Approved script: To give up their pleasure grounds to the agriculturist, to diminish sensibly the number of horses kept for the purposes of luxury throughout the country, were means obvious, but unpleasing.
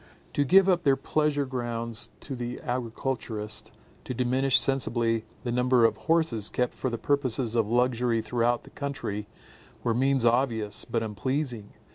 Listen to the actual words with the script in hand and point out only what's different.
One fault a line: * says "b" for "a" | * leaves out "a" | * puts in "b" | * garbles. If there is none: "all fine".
all fine